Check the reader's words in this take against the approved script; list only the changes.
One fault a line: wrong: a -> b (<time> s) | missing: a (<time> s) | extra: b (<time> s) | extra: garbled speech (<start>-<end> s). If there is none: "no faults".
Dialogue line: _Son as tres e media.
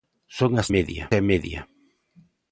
wrong: tres -> media (0.8 s)